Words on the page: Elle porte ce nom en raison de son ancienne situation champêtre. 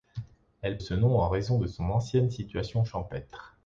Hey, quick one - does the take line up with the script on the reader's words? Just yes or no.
no